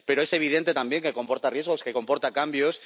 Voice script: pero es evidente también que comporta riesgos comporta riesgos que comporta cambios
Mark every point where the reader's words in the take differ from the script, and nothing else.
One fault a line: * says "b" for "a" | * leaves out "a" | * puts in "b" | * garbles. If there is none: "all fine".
* leaves out "comporta riesgos"